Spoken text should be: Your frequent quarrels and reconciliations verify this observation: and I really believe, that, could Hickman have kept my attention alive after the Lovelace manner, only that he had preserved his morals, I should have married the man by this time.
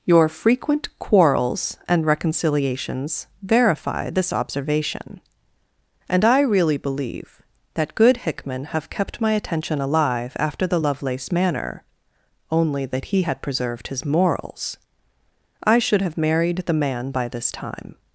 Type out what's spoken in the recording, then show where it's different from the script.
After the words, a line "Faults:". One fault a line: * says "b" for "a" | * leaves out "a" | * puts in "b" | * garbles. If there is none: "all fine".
Your frequent quarrels and reconciliations verify this observation: and I really believe, that, good Hickman have kept my attention alive after the Lovelace manner, only that he had preserved his morals, I should have married the man by this time.
Faults:
* says "good" for "could"